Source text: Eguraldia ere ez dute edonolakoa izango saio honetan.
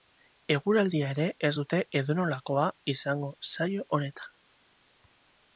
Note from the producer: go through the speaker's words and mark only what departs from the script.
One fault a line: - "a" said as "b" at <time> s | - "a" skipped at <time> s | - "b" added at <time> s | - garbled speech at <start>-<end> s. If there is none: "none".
none